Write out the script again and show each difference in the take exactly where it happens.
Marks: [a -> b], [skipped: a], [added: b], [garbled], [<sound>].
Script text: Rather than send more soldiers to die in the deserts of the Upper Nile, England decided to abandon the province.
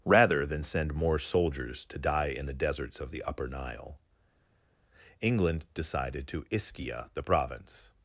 Rather than send more soldiers to die in the deserts of the Upper Nile, England decided to [abandon -> ischia] the province.